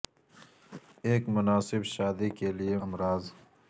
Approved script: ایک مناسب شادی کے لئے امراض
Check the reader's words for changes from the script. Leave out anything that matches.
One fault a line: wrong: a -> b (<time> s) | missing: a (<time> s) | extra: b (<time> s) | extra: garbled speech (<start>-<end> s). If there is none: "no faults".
no faults